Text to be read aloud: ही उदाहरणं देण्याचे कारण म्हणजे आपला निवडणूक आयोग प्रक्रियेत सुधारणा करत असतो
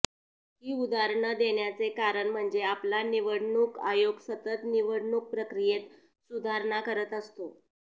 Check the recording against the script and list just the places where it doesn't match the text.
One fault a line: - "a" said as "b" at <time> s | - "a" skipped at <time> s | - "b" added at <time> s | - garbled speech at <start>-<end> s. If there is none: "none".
- "सतत निवडणूक" added at 4.3 s